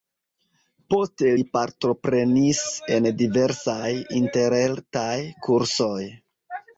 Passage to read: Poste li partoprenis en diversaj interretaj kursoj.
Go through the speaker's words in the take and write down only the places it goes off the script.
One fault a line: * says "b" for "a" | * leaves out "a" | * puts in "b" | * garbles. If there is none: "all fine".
all fine